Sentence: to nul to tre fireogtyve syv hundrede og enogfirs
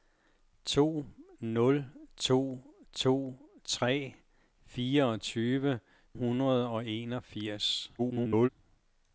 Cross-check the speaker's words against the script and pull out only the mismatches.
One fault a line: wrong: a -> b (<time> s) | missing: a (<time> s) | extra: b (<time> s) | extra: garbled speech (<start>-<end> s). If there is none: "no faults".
extra: to (2.9 s)
missing: syv (5.8 s)
extra: garbled speech (8.0-8.5 s)